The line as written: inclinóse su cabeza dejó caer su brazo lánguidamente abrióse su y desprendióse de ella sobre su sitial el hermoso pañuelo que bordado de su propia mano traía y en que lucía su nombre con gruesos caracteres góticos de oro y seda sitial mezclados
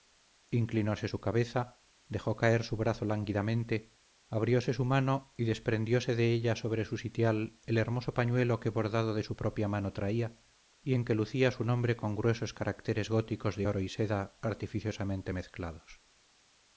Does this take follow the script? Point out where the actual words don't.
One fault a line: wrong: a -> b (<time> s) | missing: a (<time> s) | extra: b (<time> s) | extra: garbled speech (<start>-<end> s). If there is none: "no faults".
extra: mano (4.9 s)
wrong: sitial -> artificiosamente (14.4 s)